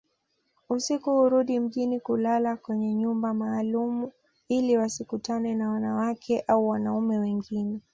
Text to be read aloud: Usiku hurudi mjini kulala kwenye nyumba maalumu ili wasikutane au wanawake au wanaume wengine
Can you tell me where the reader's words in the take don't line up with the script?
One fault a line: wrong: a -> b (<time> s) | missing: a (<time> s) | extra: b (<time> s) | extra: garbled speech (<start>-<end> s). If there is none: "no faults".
wrong: au -> na (5.5 s)